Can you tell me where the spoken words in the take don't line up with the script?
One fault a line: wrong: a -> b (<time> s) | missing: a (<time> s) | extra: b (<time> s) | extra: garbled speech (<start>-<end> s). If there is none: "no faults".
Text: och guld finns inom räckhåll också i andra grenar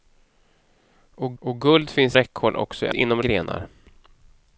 extra: och (1.4 s)
missing: inom (2.2 s)
wrong: andra -> inom (2.9 s)